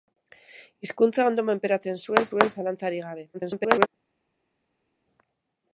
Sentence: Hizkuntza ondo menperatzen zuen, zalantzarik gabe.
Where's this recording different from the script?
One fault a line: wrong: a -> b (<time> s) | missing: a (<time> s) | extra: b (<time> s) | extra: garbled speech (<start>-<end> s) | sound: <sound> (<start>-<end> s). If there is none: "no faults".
extra: zuen (2.3 s)
extra: garbled speech (3.3-3.9 s)